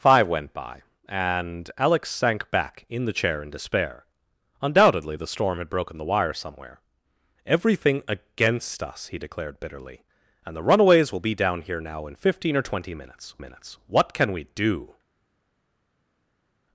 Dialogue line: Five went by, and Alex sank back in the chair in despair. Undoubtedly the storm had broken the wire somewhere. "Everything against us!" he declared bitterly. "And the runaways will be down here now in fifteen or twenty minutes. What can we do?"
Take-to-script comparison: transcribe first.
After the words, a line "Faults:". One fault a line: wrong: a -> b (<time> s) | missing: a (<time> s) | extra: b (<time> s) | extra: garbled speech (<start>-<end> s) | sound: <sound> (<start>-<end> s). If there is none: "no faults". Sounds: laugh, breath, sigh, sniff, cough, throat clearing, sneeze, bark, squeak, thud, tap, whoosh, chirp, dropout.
Five went by, and Alex sank back in the chair in despair. Undoubtedly the storm had broken the wire somewhere. "Everything against us!" he declared bitterly. "And the runaways will be down here now in fifteen or twenty minutes minutes. What can we do?"
Faults:
extra: minutes (13.4 s)